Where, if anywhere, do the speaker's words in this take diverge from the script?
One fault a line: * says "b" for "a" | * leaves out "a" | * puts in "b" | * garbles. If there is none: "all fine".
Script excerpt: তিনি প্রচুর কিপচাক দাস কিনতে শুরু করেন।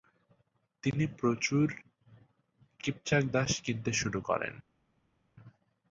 all fine